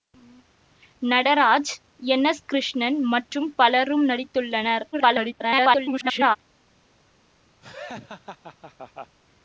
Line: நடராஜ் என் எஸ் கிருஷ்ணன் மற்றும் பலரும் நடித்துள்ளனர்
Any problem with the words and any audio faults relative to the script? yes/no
yes